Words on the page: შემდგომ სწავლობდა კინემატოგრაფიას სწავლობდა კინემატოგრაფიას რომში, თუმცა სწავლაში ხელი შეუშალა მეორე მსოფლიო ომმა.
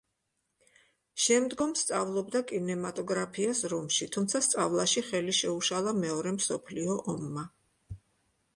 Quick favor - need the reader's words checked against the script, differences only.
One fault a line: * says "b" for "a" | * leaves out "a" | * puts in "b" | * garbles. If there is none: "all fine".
* leaves out "სწავლობდა კინემატოგრაფიას"